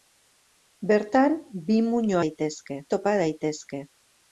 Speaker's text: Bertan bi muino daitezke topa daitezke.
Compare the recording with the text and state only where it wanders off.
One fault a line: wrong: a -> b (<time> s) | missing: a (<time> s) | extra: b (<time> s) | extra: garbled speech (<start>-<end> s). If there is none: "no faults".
no faults